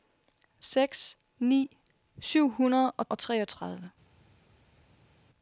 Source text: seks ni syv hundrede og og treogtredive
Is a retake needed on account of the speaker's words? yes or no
no